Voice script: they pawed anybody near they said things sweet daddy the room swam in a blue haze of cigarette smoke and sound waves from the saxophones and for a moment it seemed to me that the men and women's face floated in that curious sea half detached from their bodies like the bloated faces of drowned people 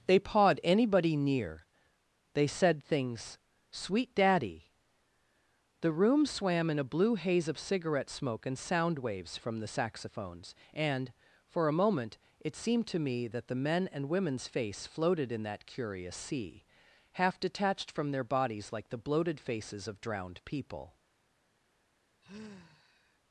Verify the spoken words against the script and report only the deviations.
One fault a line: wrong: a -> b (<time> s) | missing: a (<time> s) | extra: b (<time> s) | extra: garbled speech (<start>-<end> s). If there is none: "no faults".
no faults